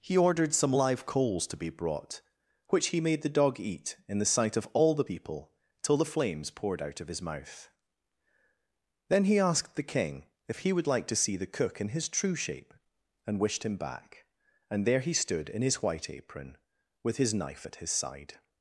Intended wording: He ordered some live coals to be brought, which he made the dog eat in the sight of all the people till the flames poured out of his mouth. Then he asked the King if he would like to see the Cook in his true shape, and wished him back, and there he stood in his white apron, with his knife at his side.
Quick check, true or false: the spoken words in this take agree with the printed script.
true